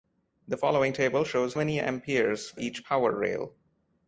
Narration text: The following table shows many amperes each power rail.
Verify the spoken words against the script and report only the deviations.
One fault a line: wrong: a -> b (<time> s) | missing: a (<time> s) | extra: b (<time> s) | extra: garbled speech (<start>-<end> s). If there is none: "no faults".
no faults